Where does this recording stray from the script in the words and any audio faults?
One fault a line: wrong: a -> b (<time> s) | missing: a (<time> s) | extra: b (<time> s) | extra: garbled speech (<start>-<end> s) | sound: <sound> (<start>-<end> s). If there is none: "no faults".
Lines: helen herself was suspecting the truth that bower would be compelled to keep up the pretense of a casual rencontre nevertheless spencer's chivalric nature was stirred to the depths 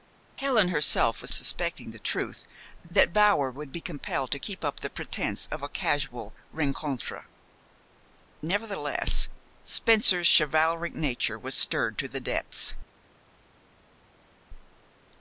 no faults